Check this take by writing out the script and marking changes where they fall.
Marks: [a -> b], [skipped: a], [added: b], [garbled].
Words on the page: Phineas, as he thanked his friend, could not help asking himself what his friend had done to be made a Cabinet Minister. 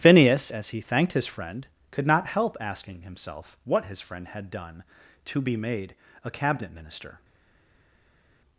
Phineas, as he thanked his friend, could not help asking himself what his friend had done to be made a Cabinet Minister.